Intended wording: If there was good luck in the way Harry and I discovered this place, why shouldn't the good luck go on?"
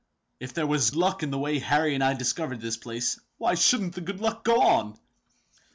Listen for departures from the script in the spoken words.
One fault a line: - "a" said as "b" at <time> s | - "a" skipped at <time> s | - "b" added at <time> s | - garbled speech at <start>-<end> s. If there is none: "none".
- "good" skipped at 0.9 s